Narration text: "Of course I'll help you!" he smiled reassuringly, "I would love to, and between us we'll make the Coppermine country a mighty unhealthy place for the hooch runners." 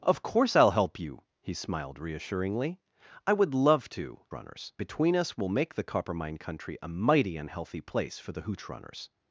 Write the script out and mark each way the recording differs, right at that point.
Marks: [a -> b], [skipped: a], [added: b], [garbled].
"Of course I'll help you!" he smiled reassuringly, "I would love to, [and -> runners] between us we'll make the Coppermine country a mighty unhealthy place for the hooch runners."